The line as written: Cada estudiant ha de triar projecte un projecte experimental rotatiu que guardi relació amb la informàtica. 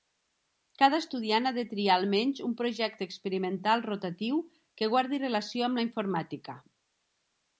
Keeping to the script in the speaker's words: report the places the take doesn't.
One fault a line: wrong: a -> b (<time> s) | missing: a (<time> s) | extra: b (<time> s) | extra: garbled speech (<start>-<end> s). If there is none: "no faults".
wrong: projecte -> almenys (2.0 s)